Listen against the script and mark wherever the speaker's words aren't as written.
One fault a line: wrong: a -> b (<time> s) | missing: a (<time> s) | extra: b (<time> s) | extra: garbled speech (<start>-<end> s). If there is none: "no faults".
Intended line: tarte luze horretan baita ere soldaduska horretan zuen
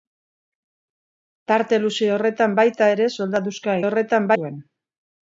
no faults